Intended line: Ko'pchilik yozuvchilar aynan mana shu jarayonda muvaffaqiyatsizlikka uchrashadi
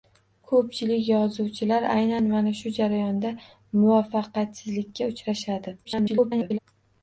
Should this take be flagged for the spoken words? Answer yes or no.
yes